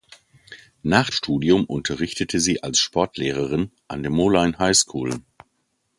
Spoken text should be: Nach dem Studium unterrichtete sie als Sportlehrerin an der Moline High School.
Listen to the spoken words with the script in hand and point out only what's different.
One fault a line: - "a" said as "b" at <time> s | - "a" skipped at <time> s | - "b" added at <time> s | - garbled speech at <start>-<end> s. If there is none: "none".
- "dem" skipped at 1.1 s